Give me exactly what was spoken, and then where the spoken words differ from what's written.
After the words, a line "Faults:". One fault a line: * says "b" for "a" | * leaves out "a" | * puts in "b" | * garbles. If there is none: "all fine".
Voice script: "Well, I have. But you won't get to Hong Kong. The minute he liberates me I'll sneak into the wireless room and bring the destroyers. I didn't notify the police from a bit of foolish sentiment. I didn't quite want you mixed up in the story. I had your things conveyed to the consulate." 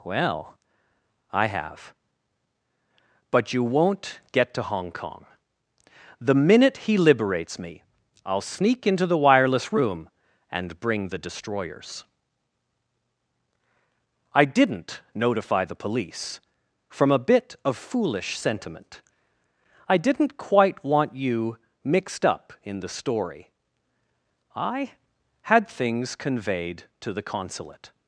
"Well, I have. But you won't get to Hong Kong. The minute he liberates me I'll sneak into the wireless room and bring the destroyers. I didn't notify the police from a bit of foolish sentiment. I didn't quite want you mixed up in the story. I had things conveyed to the consulate."
Faults:
* leaves out "your"